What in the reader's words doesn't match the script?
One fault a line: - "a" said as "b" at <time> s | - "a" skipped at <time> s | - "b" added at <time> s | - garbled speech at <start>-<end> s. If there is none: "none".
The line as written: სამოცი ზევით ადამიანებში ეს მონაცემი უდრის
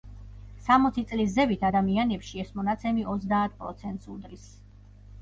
- "წლის" added at 1.1 s
- "ოცდაათ პროცენტს" added at 3.1 s